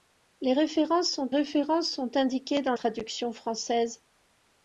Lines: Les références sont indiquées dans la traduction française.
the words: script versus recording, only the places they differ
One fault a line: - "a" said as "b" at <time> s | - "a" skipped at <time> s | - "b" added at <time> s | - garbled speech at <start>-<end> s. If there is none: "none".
- "références sont" added at 1.3 s
- "la" skipped at 2.7 s